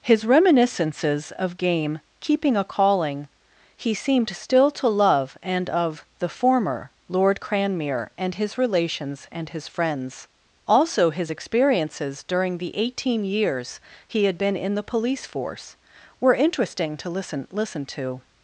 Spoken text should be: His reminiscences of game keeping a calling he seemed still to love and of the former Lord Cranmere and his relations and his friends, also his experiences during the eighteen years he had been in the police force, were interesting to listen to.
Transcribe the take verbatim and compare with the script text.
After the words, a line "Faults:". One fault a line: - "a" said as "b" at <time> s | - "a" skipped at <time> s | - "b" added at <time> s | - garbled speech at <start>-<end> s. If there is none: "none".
His reminiscences of game keeping a calling he seemed still to love and of the former Lord Cranmere and his relations and his friends, also his experiences during the eighteen years he had been in the police force, were interesting to listen listen to.
Faults:
- "listen" added at 17.5 s